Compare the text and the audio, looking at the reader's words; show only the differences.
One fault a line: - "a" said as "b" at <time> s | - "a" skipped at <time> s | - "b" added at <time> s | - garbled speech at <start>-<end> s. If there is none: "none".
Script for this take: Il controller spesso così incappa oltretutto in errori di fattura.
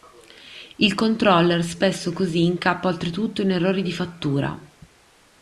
none